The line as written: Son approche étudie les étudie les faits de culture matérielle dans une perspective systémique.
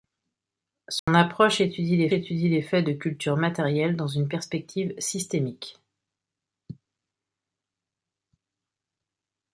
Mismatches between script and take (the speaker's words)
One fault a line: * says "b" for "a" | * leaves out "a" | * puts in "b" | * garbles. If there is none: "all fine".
all fine